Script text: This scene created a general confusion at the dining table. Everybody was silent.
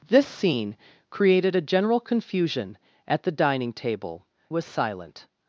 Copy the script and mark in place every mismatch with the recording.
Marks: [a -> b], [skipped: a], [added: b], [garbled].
This scene created a general confusion at the dining table. [skipped: Everybody] was silent.